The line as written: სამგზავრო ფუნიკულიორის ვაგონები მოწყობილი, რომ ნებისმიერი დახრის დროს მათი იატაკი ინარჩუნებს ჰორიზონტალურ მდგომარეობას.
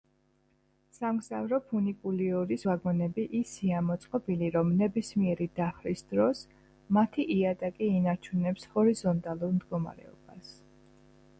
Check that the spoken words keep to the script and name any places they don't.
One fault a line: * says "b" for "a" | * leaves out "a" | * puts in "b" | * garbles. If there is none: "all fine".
* puts in "ისეა"